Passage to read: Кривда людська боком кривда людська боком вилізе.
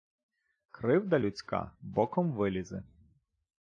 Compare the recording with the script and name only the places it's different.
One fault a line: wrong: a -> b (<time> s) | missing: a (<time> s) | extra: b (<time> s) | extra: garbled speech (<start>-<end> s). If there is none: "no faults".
missing: кривда людська боком (2.3 s)